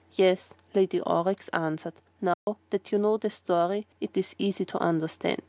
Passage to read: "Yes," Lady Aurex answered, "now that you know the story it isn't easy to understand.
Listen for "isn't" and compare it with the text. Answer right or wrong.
wrong